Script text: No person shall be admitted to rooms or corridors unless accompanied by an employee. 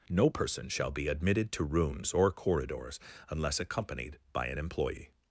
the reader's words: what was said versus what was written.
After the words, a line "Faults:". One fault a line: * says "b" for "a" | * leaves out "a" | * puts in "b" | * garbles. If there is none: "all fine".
No person shall be admitted to rooms or corridors unless accompanied by an employee.
Faults:
all fine